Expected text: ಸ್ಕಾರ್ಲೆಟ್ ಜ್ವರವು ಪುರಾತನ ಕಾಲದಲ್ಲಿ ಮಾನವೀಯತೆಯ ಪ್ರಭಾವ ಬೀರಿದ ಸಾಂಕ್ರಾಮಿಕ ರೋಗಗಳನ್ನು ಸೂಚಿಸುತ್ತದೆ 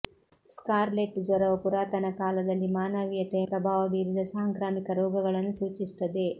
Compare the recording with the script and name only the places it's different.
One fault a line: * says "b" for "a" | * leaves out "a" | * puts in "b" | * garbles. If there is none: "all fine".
all fine